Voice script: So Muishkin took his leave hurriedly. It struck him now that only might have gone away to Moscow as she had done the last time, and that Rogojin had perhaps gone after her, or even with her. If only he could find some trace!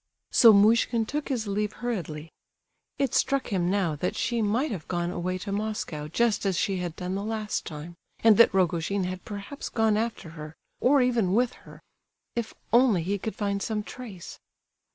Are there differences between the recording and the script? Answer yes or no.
yes